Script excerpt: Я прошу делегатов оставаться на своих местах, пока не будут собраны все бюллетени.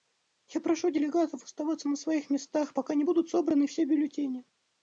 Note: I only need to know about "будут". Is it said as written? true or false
true